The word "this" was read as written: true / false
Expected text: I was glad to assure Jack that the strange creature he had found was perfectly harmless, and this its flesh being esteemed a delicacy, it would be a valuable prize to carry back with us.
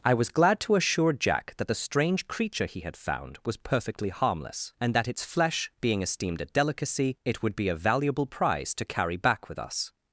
false